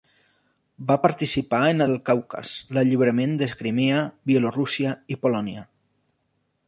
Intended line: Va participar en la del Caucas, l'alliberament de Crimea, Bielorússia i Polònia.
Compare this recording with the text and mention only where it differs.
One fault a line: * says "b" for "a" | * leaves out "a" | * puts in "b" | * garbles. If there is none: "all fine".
all fine